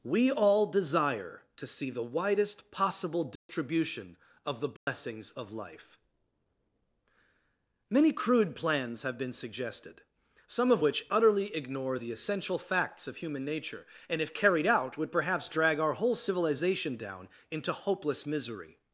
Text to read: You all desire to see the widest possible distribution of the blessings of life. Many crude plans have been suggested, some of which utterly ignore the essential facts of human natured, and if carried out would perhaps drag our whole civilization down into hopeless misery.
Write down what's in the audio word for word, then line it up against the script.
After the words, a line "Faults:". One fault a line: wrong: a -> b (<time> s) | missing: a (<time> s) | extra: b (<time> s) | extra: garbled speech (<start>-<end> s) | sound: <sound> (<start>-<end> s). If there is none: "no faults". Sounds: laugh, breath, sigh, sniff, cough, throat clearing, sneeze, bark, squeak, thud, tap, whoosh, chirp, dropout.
We all desire to see the widest possible distribution of the blessings of life. Many crude plans have been suggested, some of which utterly ignore the essential facts of human nature, and if carried out would perhaps drag our whole civilization down into hopeless misery.
Faults:
wrong: You -> We (0.0 s)
sound: dropout (3.4-3.5 s)
sound: dropout (4.8-4.9 s)
wrong: natured -> nature (13.4 s)